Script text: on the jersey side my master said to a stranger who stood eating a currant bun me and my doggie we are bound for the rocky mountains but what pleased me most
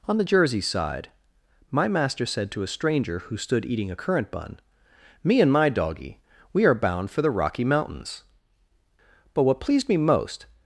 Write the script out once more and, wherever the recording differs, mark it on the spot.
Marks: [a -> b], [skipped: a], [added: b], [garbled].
on the jersey side my master said to a stranger who stood eating a currant bun me and my doggie we are bound for the rocky mountains but what pleased me most